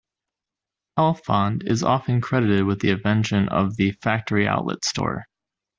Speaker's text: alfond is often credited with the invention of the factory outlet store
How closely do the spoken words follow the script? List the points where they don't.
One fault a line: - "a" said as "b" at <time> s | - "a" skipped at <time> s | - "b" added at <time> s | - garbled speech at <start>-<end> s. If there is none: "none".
none